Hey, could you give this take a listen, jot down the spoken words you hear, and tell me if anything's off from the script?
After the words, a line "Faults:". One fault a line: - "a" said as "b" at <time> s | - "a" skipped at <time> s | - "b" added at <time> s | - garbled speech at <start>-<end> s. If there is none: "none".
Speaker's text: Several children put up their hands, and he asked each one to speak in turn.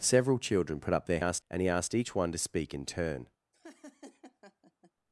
Several children put up their asked, and he asked each one to speak in turn.
Faults:
- "hands" said as "asked" at 1.2 s